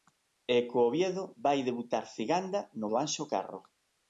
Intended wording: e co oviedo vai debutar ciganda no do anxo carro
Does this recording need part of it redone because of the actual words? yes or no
no